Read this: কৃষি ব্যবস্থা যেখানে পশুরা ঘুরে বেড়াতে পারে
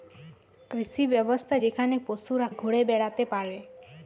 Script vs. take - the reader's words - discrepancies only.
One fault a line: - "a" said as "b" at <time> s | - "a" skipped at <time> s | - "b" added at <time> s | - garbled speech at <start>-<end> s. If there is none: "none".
none